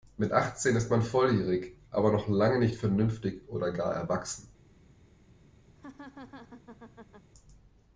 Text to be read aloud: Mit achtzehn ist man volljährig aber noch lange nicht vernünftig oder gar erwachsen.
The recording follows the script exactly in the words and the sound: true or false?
false